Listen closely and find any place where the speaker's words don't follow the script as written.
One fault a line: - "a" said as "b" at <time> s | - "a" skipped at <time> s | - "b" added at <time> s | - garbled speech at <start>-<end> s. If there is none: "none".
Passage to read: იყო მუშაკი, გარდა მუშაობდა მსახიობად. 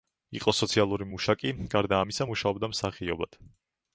- "სოციალური" added at 0.6 s
- "ამისა" added at 2.0 s